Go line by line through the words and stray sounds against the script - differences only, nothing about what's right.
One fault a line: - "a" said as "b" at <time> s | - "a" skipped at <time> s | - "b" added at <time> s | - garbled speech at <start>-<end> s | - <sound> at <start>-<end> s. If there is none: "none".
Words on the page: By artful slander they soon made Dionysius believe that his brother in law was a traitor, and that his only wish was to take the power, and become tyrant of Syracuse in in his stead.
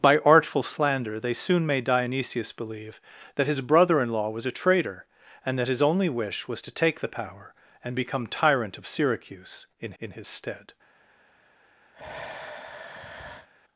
- sigh at 11.9-13.5 s